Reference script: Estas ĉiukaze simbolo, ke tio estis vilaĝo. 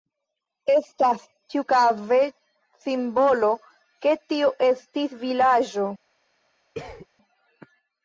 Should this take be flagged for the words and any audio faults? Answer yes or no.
yes